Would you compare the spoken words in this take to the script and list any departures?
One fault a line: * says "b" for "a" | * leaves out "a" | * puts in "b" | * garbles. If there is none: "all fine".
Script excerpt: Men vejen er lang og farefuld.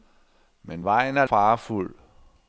* leaves out "lang og"